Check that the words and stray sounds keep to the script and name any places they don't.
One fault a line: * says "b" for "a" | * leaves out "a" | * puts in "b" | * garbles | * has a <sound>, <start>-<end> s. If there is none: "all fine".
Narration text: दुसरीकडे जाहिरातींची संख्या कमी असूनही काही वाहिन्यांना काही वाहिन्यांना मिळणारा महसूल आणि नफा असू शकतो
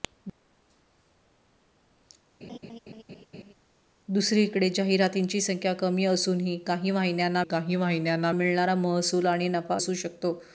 * has a laugh, 2.4-3.5 s